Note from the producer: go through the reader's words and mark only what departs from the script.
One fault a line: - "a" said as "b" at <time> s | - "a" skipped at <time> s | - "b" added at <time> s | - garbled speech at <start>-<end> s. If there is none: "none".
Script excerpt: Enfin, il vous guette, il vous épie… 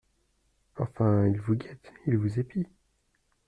none